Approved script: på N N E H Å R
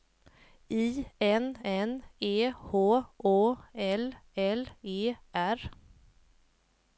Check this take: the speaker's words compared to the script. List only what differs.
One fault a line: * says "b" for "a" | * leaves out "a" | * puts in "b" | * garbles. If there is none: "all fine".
* says "I" for "på"
* puts in "L L E"